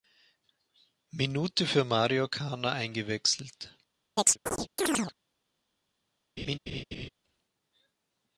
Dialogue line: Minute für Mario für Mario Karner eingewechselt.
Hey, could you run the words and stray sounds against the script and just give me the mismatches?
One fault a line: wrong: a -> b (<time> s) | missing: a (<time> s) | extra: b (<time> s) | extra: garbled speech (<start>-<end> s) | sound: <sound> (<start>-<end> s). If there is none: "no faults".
missing: für Mario (2.3 s)
sound: chirp (4.2-5.1 s)
sound: laugh (6.4-7.1 s)